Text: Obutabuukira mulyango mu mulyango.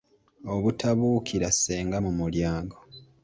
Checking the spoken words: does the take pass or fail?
fail